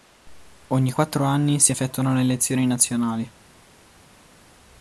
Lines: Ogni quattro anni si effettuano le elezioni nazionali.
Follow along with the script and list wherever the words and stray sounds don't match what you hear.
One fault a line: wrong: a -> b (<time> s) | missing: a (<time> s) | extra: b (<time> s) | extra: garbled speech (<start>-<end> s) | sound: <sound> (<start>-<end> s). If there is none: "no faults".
no faults